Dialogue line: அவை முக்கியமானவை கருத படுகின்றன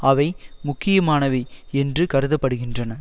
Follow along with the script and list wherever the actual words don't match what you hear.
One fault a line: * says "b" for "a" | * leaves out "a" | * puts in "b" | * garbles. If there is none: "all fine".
* puts in "என்று"